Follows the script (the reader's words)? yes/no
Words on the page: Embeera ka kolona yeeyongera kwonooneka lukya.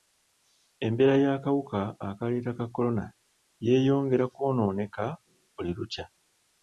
no